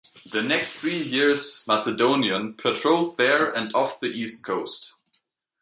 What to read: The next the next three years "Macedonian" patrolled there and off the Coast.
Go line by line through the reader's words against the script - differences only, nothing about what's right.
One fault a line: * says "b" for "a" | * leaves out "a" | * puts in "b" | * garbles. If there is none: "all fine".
* leaves out "the next"
* puts in "East"